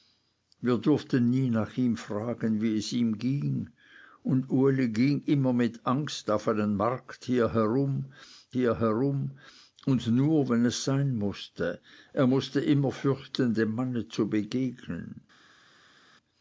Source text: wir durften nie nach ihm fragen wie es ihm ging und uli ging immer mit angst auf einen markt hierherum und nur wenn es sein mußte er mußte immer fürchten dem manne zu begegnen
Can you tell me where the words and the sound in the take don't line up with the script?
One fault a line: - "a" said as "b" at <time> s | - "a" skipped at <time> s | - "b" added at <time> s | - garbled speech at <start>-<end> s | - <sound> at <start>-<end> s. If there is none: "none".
- "hierherum" added at 8.5 s